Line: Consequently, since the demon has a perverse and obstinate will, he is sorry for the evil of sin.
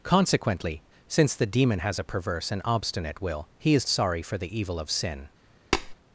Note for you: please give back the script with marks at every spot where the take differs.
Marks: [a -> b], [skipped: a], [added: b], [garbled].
Consequently, since the demon has a perverse and obstinate will, he is sorry for the evil of sin.